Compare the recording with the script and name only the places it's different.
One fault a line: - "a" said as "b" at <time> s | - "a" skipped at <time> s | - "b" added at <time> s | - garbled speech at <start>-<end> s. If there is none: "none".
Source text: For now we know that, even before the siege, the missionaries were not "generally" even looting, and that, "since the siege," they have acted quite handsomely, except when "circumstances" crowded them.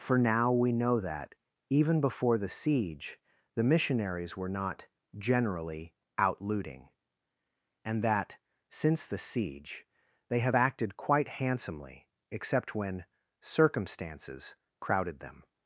- "even" said as "out" at 6.2 s